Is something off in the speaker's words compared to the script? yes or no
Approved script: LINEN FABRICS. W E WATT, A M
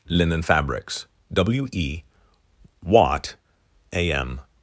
no